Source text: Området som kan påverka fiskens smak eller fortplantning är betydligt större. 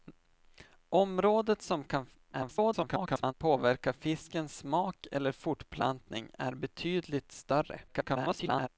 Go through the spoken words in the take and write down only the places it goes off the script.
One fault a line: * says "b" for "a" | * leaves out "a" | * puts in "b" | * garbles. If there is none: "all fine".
* garbles
* garbles